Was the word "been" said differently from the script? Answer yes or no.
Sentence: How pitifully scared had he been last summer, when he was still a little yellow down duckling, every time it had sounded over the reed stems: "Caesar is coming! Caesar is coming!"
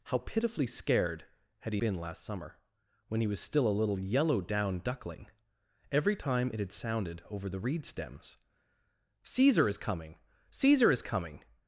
no